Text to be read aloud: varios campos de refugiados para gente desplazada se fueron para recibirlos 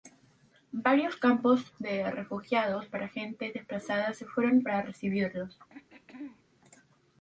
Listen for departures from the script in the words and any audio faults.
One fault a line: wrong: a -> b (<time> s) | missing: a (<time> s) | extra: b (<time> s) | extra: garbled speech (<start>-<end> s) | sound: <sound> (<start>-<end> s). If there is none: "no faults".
sound: throat clearing (5.7-6.4 s)